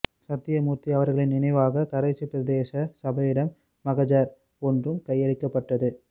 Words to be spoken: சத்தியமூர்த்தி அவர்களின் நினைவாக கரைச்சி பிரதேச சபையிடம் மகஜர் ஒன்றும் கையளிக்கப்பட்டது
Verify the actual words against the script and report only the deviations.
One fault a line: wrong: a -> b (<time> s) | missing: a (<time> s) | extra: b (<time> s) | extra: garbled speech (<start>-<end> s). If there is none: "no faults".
no faults